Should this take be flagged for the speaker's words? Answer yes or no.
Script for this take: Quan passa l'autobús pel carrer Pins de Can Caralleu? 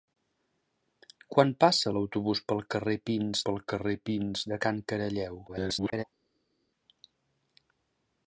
yes